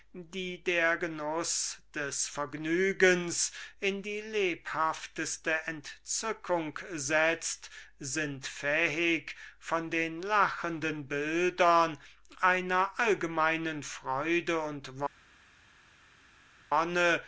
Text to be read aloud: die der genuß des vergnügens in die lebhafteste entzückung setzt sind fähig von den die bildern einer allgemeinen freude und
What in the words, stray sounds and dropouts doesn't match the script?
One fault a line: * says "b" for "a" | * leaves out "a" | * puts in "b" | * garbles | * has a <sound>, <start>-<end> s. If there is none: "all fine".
* says "lachenden" for "die"